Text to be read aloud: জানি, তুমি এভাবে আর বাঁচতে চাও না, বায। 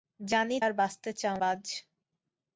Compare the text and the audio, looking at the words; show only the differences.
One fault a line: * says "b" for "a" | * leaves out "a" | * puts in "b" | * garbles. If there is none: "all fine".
* leaves out "তুমি এভাবে"
* leaves out "না"